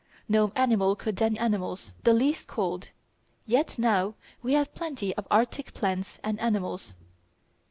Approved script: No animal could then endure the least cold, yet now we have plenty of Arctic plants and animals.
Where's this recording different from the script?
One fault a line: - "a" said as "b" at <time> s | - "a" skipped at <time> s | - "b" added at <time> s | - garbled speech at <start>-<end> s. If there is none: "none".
- "endure" said as "animals" at 1.4 s